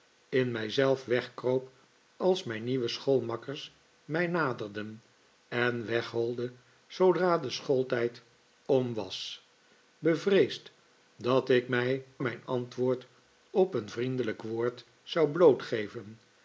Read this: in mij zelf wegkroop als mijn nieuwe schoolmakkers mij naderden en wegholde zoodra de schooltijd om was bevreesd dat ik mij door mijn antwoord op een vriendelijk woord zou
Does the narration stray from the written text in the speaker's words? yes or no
yes